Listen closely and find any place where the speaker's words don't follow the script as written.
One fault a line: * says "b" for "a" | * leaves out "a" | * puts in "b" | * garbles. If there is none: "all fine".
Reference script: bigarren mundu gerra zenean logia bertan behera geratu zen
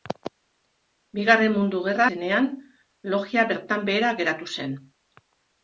all fine